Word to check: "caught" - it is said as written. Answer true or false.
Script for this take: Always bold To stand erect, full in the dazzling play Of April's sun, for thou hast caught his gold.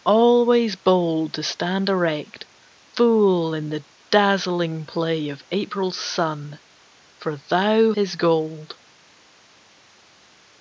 false